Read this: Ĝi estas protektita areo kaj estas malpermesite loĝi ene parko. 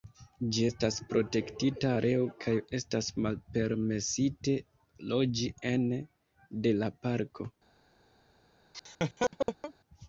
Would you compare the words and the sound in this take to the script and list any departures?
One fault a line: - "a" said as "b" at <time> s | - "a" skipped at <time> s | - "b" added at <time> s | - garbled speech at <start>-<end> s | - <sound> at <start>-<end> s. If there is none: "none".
- "de la" added at 6.7 s
- laugh at 8.7-9.7 s